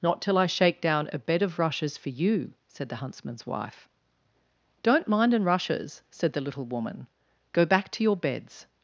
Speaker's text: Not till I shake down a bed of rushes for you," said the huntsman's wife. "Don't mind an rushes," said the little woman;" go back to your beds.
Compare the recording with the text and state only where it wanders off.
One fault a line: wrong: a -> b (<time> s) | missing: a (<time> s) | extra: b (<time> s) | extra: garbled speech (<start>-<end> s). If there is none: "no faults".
no faults